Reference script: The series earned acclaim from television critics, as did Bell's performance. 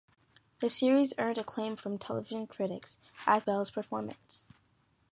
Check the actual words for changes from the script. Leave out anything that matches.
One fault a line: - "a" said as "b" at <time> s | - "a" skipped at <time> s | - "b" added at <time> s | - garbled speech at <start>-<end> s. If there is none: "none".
- "did" skipped at 3.4 s